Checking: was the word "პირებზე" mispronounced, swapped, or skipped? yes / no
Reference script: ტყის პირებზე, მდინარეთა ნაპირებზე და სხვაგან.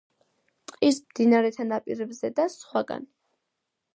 yes